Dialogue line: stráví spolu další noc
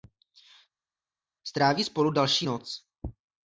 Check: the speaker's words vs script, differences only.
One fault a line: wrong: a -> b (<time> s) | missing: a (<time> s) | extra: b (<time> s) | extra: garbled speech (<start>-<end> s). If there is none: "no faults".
no faults